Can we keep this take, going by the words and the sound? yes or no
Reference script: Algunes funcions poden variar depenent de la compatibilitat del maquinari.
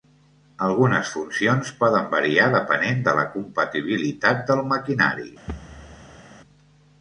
no